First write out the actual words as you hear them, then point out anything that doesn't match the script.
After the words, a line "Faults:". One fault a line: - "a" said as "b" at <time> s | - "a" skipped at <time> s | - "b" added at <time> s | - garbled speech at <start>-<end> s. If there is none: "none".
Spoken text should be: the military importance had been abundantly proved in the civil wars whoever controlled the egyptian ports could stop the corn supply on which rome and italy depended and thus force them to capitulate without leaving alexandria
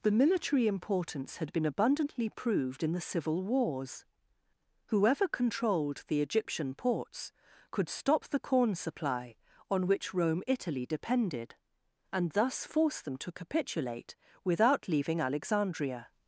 the military importance had been abundantly proved in the civil wars whoever controlled the egyptian ports could stop the corn supply on which rome italy depended and thus force them to capitulate without leaving alexandria
Faults:
- "and" skipped at 10.4 s